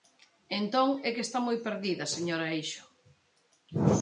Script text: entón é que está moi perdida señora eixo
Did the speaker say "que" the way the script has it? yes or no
yes